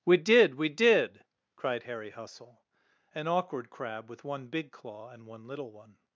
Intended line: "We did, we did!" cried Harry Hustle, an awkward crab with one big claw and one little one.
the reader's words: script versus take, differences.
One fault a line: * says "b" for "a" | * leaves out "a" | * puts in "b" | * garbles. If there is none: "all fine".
all fine